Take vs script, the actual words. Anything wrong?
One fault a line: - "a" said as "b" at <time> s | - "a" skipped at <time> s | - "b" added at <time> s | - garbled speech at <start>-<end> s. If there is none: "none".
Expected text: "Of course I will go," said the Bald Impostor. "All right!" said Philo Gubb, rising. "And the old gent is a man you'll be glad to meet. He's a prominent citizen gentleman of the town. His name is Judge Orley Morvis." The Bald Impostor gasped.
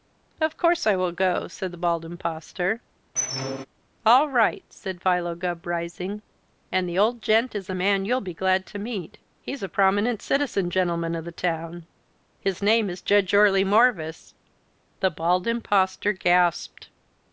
none